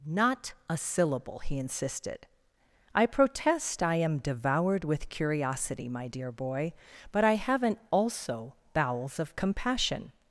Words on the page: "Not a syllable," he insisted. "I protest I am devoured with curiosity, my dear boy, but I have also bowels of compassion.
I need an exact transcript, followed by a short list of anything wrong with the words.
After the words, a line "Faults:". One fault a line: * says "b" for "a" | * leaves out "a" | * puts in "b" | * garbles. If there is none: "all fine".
"Not a syllable," he insisted. "I protest I am devoured with curiosity, my dear boy, but I haven't also bowels of compassion.
Faults:
* says "haven't" for "have"